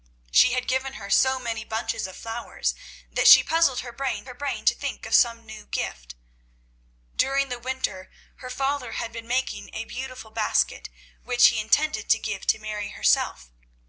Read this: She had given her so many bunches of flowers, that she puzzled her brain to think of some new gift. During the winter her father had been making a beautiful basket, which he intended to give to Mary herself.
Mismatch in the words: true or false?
true